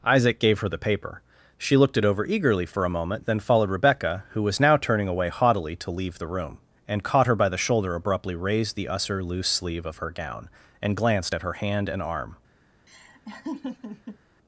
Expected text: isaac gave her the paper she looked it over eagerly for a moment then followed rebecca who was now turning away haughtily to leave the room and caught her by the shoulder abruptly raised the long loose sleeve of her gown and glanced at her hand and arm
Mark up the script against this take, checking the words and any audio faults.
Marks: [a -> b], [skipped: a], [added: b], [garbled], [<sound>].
isaac gave her the paper she looked it over eagerly for a moment then followed rebecca who was now turning away haughtily to leave the room and caught her by the shoulder abruptly raised the [long -> usser] loose sleeve of her gown and glanced at her hand and arm [laugh]